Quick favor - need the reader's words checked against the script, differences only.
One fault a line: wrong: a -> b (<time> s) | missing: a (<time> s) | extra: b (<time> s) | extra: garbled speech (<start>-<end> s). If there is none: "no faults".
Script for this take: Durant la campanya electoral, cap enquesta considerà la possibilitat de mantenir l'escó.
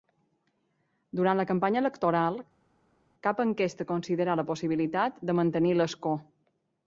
no faults